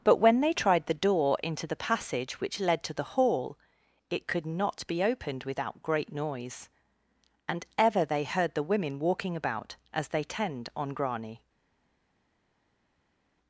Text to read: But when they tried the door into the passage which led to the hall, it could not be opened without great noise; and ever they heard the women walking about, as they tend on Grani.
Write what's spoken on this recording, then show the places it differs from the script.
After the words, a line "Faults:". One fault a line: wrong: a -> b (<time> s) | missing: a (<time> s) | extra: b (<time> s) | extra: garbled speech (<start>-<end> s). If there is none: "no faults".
But when they tried the door into the passage which led to the hall, it could not be opened without great noise; and ever they heard the women walking about, as they tend on Grani.
Faults:
no faults